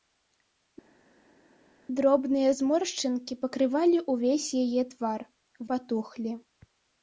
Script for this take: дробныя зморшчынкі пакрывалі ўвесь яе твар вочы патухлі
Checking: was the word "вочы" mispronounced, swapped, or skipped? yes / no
yes